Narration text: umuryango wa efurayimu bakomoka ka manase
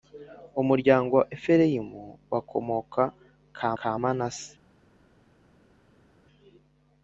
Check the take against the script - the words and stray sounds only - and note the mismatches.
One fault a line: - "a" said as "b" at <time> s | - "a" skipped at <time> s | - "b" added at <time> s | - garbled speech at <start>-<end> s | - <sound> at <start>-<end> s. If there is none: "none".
- "ka" added at 3.8 s